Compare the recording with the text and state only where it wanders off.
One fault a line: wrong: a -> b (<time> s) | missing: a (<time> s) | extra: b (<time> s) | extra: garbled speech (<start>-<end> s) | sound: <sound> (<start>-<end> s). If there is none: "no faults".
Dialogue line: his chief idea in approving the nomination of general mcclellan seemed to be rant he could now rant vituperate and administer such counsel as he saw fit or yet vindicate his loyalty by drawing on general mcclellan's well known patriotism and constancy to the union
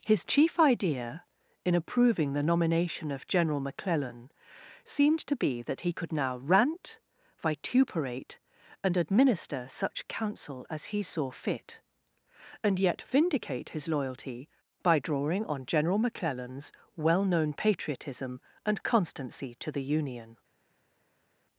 wrong: rant -> that (5.6 s)
wrong: or -> and (12.6 s)